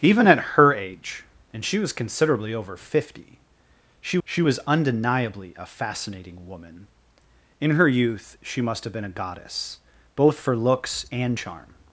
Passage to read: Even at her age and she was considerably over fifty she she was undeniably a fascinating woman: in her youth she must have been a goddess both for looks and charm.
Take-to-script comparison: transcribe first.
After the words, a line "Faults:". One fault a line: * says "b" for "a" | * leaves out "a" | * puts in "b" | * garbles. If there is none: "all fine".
Even at her age and she was considerably over fifty she she was undeniably a fascinating woman: in her youth she must have been a goddess both for looks and charm.
Faults:
all fine